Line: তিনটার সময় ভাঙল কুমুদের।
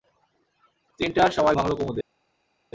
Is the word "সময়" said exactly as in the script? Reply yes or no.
yes